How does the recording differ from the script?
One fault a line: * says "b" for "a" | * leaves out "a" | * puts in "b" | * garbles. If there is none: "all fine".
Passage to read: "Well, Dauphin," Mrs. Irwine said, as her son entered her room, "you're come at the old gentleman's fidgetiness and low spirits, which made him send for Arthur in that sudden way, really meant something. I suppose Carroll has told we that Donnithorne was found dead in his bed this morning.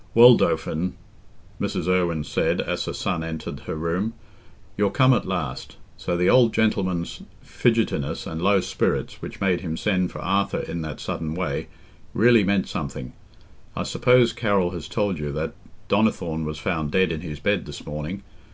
* puts in "last So"
* says "you" for "we"